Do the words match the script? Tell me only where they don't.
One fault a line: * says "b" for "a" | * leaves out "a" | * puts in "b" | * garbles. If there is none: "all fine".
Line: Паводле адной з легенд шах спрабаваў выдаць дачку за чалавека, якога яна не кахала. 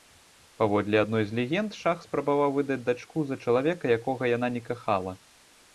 all fine